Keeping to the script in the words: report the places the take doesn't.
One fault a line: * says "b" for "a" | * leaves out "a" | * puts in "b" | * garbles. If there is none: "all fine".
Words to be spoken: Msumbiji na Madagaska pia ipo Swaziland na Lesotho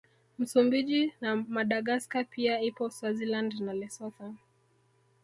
all fine